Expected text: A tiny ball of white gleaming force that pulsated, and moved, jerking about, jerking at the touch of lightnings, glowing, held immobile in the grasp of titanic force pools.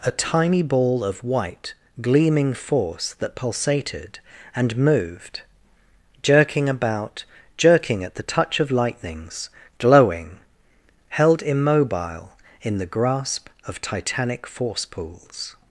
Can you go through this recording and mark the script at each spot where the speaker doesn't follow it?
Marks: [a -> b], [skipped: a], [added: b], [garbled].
A tiny ball of white gleaming force that pulsated, and moved, jerking about, jerking at the touch of lightnings, glowing, held immobile in the grasp of titanic force pools.